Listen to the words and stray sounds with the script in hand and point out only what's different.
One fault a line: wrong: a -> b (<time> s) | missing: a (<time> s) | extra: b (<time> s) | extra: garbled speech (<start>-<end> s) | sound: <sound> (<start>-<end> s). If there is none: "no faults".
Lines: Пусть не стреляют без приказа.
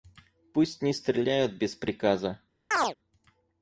sound: chirp (2.7-2.9 s)